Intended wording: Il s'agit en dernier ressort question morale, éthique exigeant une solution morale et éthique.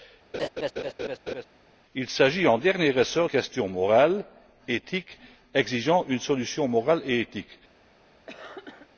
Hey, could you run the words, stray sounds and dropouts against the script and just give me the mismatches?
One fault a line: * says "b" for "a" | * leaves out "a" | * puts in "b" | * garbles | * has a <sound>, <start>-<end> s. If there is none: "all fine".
* has a laugh, 0.3-1.5 s
* has a cough, 8.3-8.9 s